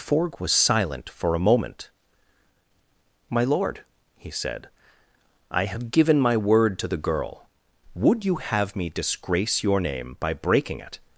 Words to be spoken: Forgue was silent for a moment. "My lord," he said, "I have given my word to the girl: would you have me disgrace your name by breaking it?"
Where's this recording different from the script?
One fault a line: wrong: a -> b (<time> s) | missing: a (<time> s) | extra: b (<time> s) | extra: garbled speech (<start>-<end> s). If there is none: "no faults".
no faults